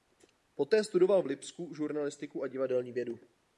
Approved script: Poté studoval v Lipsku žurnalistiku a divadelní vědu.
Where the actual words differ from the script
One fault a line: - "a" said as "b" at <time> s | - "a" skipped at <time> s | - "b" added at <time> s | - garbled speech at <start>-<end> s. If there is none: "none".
none